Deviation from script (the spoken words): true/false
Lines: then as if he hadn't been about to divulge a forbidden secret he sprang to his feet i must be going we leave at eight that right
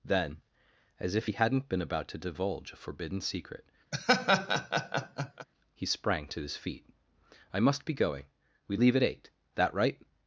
false